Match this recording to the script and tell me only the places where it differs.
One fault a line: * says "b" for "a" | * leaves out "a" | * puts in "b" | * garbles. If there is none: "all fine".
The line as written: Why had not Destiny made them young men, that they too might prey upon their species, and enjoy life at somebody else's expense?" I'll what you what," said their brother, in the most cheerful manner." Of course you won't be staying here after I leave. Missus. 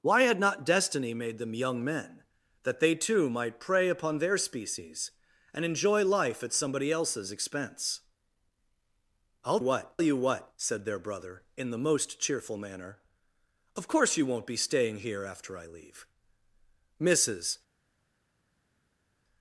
all fine